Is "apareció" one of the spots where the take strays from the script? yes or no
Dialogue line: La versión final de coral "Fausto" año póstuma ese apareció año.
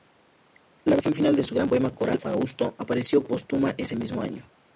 yes